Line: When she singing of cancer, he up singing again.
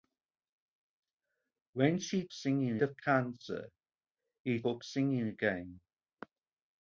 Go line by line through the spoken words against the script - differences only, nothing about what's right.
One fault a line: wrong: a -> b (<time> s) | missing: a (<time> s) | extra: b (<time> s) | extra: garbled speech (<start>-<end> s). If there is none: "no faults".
no faults